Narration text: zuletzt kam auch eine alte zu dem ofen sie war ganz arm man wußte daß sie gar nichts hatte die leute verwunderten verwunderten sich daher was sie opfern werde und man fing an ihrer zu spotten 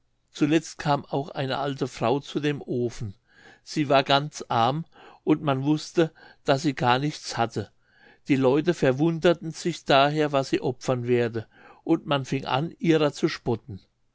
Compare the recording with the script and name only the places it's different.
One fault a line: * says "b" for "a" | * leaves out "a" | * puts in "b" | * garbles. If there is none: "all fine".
* puts in "frau"
* puts in "und"
* leaves out "verwunderten"